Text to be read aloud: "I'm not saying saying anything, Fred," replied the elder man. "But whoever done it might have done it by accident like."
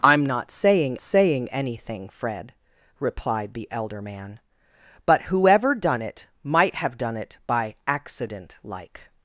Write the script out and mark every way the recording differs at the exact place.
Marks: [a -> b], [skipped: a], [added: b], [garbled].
"I'm not saying saying anything, Fred," replied the elder man. "But whoever done it might have done it by accident like."